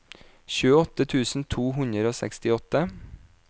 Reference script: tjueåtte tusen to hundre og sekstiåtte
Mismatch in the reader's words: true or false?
false